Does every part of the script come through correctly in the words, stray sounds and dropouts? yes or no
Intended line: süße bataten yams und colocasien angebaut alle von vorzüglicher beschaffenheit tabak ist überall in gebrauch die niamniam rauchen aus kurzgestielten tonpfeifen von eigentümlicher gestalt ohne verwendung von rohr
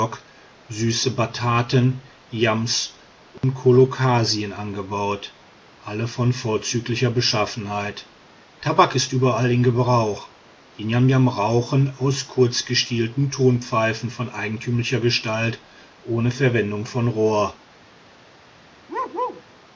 no